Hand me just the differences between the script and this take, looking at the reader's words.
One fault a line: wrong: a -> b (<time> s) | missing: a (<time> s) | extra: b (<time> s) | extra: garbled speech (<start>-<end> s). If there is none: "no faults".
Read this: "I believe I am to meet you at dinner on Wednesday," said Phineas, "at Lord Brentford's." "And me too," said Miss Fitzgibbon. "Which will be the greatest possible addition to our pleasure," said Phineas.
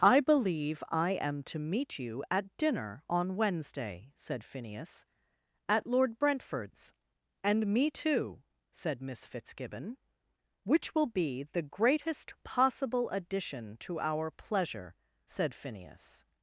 no faults